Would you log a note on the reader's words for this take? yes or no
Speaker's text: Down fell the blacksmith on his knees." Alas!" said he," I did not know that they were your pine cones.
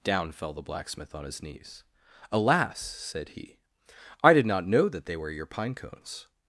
no